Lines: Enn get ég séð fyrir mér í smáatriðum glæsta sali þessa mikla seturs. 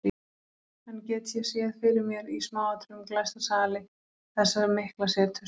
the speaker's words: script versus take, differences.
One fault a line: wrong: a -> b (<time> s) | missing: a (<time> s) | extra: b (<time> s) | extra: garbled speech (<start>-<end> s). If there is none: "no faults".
no faults